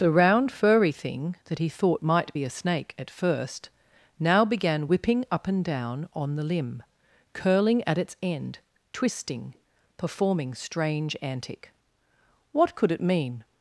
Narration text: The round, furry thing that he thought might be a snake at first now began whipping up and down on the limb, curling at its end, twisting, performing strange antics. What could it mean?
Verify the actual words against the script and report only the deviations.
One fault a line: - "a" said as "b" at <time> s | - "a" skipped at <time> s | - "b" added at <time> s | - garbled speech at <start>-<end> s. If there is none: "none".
- "antics" said as "antic" at 11.2 s